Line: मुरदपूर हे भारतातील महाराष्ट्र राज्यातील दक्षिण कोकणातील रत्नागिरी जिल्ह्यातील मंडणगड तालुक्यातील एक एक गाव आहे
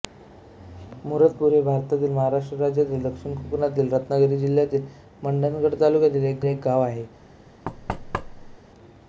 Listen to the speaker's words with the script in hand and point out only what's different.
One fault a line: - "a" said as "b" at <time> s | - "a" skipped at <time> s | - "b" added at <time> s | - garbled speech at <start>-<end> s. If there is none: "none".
none